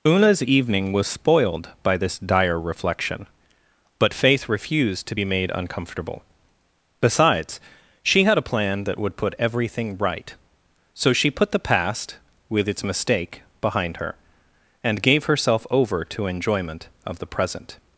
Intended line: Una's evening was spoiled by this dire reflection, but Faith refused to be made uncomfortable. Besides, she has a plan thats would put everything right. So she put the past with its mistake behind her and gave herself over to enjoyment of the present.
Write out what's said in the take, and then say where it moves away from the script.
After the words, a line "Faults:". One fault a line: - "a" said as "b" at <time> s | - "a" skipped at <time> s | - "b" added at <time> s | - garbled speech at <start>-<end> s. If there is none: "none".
Una's evening was spoiled by this dire reflection, but Faith refused to be made uncomfortable. Besides, she had a plan that would put everything right. So she put the past with its mistake behind her and gave herself over to enjoyment of the present.
Faults:
- "has" said as "had" at 8.2 s
- "thats" said as "that" at 8.8 s